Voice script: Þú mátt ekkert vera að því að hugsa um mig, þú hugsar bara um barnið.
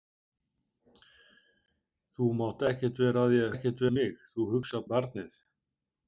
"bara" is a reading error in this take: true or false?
true